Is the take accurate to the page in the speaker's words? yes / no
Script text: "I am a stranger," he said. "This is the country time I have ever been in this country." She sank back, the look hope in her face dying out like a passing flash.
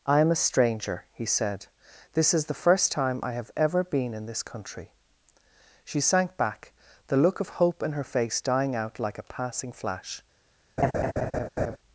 no